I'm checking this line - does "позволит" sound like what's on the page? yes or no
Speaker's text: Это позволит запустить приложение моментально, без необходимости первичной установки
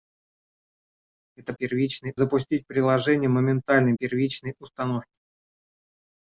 no